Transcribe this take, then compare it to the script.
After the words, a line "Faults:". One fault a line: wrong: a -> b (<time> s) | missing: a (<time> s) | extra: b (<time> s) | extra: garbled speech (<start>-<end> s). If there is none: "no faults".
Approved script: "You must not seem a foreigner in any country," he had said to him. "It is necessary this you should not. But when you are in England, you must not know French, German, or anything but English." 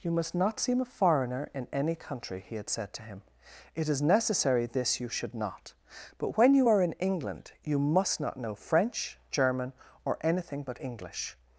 "You must not seem a foreigner in any country," he had said to him. "It is necessary this you should not. But when you are in England, you must not know French, German, or anything but English."
Faults:
no faults